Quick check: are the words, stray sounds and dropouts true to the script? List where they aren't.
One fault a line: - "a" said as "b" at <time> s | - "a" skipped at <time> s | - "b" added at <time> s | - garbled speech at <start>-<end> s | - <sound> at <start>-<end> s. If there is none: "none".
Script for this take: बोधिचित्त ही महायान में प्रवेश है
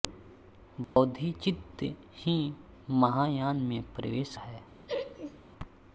- dropout at 0.8-1.0 s
- laugh at 4.9-5.4 s